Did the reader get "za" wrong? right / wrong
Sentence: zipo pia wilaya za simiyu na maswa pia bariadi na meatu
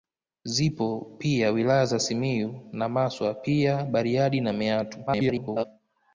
right